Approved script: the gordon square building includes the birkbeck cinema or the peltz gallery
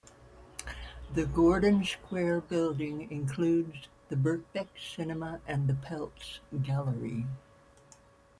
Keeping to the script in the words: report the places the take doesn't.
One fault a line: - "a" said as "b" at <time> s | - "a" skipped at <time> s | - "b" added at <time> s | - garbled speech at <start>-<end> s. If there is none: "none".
- "or" said as "and" at 5.5 s